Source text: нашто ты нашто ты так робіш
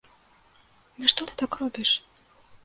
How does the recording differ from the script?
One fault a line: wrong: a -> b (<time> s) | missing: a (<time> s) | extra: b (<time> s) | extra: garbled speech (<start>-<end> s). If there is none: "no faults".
missing: нашто ты (1.3 s)